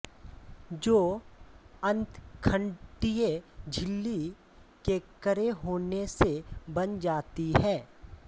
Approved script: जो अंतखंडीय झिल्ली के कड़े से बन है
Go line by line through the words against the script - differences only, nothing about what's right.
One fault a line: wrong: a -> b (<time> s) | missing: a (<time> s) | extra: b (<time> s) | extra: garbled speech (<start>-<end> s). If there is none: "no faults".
extra: होने (5.6 s)
extra: जाती (7.0 s)